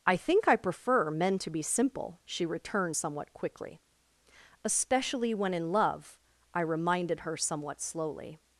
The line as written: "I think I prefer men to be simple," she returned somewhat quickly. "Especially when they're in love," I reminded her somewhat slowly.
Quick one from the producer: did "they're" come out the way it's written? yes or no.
no